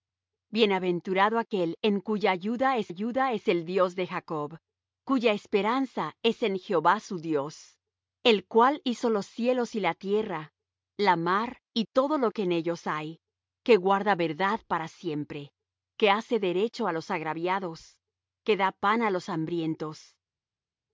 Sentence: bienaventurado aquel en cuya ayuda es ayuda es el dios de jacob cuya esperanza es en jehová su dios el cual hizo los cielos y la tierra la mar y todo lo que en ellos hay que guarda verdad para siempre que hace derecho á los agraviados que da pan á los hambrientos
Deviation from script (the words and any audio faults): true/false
false